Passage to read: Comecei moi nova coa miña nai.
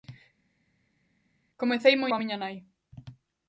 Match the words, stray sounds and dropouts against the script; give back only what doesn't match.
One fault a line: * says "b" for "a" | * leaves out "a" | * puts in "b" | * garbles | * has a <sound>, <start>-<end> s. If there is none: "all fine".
* leaves out "nova"